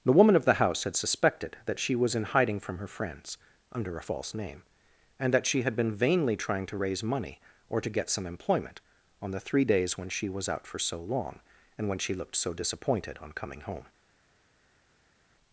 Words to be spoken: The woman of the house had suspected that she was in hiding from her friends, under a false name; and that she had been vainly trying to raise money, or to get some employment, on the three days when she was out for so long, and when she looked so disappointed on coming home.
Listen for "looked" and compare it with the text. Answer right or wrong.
right